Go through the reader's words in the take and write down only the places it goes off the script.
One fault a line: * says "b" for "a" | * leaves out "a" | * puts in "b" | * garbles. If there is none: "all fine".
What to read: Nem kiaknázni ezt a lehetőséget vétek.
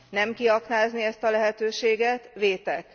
all fine